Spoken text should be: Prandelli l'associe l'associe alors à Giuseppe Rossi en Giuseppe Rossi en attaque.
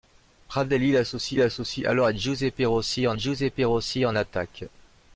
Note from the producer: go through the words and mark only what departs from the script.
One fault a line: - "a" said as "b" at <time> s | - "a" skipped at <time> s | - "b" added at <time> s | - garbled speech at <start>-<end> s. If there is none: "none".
none